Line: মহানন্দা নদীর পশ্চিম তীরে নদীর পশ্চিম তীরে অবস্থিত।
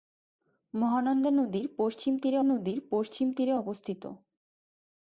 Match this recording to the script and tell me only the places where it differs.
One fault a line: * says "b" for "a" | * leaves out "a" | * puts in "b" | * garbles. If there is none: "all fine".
all fine